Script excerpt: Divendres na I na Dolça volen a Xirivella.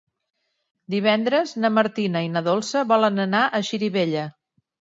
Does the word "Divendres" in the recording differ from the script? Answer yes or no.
no